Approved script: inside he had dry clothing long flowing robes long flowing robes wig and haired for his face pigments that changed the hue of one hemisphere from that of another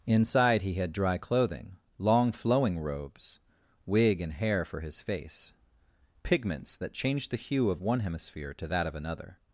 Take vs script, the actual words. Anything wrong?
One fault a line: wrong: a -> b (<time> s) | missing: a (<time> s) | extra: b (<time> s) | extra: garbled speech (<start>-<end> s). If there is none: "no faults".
missing: long flowing robes (3.4 s)
wrong: haired -> hair (4.3 s)
wrong: from -> to (8.5 s)